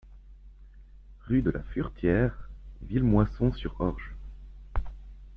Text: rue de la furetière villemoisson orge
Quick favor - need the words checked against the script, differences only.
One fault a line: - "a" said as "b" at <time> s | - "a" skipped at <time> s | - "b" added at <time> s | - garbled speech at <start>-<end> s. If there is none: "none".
- "sur" added at 3.5 s